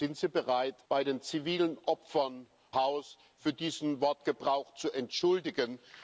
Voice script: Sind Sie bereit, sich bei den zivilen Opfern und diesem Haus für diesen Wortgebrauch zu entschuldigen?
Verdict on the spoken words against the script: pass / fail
fail